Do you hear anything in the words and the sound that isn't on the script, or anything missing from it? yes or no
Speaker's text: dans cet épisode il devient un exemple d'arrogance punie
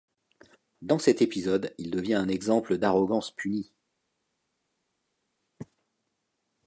no